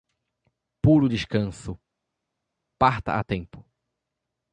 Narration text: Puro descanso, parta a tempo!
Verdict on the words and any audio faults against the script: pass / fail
pass